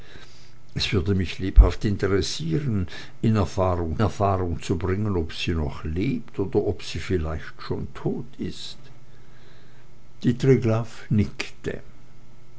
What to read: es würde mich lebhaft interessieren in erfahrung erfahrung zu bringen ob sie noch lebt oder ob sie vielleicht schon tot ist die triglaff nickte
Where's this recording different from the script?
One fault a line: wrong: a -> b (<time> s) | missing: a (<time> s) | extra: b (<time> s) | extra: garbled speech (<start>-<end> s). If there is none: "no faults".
no faults